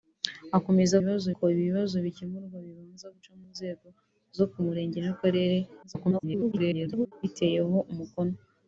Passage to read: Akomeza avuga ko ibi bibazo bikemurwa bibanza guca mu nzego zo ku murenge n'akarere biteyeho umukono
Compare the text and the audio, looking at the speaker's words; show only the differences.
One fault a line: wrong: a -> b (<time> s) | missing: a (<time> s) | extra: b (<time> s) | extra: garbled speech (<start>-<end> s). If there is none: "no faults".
wrong: avuga -> bibazo (1.0 s)
extra: garbled speech (5.8-7.1 s)